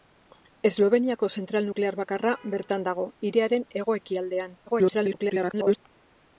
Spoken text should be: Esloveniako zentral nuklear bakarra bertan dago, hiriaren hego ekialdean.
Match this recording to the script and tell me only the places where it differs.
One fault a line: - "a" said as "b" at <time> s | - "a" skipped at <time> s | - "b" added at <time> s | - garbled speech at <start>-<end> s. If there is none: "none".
- garbled speech at 4.7-5.8 s